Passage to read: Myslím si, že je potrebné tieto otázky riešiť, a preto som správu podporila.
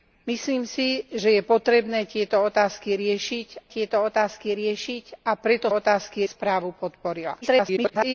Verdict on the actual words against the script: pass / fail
fail